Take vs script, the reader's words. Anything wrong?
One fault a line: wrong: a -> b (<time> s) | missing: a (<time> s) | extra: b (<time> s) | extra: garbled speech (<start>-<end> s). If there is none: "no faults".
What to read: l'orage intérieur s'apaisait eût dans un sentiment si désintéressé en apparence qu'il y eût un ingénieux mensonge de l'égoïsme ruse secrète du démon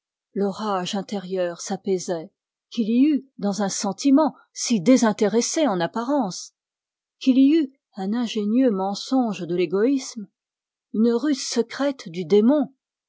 extra: qu'il y (2.7 s)
extra: une (10.9 s)